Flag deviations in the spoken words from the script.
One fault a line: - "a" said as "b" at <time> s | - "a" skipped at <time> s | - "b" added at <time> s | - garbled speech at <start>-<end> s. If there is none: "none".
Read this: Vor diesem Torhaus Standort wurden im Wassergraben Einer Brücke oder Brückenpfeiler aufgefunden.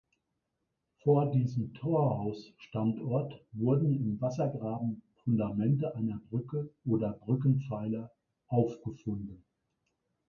- "Fundamente" added at 5.2 s